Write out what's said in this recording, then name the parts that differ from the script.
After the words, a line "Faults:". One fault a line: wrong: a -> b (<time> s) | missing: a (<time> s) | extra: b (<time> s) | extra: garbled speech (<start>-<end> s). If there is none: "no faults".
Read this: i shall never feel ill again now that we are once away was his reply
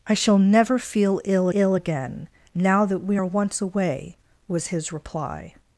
i shall never feel ill ill again now that we are once away was his reply
Faults:
extra: ill (1.5 s)